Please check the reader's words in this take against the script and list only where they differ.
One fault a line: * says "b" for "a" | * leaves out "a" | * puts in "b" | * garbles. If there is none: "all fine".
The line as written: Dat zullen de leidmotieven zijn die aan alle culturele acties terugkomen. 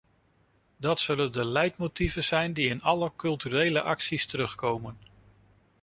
* says "in" for "aan"